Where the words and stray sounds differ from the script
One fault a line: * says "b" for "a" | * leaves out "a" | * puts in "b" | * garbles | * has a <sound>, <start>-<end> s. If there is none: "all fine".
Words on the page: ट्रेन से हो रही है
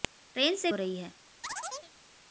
* has a chirp, 1.4-1.9 s